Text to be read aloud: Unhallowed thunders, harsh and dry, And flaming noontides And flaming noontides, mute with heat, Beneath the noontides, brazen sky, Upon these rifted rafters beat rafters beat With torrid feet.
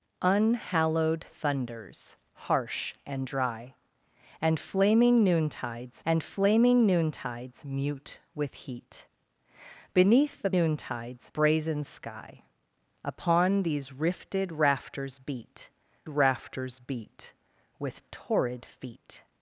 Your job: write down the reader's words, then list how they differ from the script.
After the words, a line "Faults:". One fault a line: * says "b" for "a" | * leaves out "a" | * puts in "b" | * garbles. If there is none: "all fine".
Unhallowed thunders, harsh and dry, And flaming noontides And flaming noontides, mute with heat, Beneath the noontides, brazen sky, Upon these rifted rafters beat rafters beat With torrid feet.
Faults:
all fine